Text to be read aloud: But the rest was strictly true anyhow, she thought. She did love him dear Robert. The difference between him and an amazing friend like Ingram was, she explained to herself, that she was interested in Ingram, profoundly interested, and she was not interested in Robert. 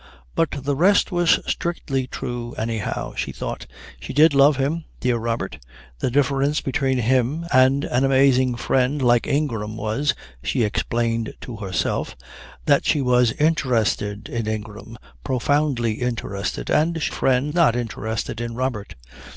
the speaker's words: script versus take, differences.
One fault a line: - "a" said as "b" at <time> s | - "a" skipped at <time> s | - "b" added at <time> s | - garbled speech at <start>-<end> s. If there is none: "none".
- "was" said as "friend" at 17.1 s